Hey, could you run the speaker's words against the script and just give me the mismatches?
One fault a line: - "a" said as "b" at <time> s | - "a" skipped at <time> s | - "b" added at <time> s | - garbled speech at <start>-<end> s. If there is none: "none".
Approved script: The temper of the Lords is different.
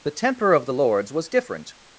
- "is" said as "was" at 1.1 s